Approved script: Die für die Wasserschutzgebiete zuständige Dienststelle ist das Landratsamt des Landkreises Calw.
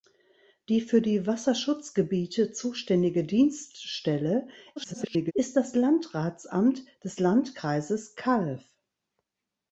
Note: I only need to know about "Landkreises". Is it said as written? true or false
true